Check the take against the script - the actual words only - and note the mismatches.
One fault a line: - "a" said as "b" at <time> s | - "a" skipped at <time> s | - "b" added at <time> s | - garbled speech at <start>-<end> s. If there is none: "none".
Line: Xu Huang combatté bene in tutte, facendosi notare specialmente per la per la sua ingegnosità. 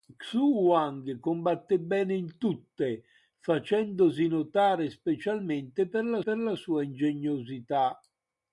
none